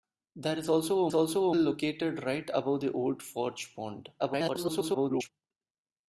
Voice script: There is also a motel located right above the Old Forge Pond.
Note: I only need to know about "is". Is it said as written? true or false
true